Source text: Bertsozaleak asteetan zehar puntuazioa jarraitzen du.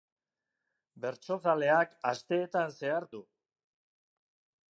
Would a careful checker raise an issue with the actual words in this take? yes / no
yes